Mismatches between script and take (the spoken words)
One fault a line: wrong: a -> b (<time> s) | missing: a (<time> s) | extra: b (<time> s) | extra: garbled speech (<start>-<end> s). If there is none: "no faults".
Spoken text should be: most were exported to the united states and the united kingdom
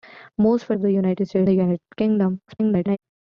missing: exported (0.8 s)
missing: and (1.5 s)
extra: garbled speech (2.5-3.0 s)